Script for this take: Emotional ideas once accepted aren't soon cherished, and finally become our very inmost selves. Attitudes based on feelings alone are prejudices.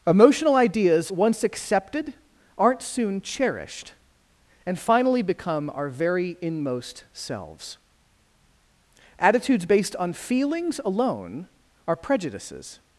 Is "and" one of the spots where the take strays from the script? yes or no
no